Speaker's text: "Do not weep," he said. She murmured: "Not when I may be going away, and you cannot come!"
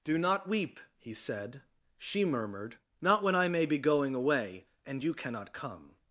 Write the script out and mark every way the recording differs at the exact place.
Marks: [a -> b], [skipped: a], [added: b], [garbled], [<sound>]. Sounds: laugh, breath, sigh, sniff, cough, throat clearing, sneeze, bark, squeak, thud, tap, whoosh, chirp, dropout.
"Do not weep," he said. She murmured: "Not when I may be going away, and you cannot come!"